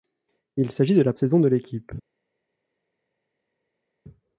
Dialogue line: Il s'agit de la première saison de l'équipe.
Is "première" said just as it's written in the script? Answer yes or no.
no